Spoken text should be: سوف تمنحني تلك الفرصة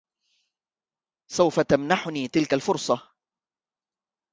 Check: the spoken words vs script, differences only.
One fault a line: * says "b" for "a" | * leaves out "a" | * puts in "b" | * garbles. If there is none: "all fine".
all fine